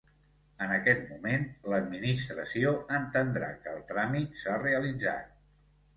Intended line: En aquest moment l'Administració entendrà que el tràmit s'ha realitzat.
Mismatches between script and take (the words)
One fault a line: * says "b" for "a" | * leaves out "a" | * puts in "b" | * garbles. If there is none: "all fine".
all fine